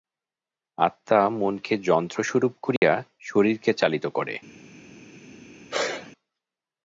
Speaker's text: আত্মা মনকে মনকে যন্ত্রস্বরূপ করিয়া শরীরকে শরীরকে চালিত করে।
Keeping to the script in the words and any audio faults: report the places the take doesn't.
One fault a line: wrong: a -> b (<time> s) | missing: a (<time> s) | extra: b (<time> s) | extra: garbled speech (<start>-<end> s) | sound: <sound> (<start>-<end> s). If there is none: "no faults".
missing: মনকে (1.7 s)
sound: dropout (2.8-2.8 s)
missing: শরীরকে (3.7 s)
sound: sneeze (5.7-6.1 s)